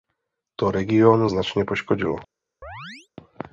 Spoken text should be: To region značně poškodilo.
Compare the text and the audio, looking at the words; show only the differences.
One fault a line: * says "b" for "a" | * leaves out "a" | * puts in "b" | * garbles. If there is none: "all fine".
all fine